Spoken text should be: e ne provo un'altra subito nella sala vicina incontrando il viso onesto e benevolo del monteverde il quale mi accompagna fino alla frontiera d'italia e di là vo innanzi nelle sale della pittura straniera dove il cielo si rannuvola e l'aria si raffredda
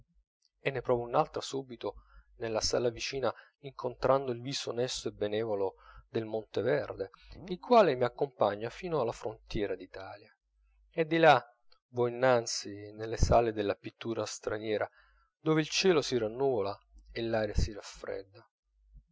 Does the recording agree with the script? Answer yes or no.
yes